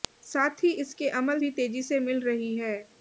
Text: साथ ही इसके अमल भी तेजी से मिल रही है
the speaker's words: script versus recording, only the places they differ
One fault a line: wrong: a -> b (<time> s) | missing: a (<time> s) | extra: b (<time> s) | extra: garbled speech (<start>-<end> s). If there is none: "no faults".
no faults